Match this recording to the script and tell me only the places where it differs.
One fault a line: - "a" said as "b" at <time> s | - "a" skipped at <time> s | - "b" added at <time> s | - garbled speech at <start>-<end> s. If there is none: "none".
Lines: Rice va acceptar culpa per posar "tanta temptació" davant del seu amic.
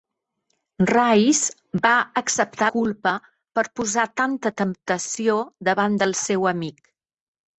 none